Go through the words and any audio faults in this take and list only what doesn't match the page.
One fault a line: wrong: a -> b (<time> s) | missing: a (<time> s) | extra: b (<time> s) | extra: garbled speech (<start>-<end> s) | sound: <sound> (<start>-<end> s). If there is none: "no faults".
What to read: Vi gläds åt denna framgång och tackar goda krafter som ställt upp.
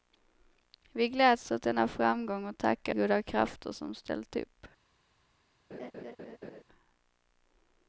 sound: laugh (5.7-6.6 s)